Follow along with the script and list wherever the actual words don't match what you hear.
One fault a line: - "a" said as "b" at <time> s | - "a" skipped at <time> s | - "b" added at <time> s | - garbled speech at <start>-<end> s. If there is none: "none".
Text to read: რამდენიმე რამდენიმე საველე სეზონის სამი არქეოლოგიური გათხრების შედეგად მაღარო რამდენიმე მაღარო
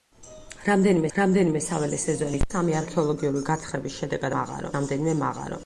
none